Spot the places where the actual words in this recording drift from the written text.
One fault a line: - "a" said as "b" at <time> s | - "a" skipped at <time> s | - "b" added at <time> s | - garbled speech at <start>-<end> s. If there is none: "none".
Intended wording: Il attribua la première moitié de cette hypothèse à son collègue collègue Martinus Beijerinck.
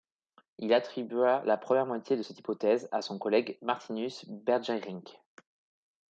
- "collègue" skipped at 3.6 s